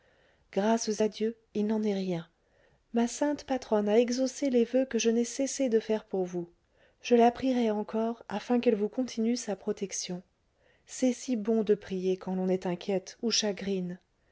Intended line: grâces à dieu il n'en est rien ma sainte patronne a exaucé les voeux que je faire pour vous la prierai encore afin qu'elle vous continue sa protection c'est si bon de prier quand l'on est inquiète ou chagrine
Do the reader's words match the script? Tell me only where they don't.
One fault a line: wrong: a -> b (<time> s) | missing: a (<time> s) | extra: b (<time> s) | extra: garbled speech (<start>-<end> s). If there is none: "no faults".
extra: n'ai cessé de (5.1 s)
extra: je (7.0 s)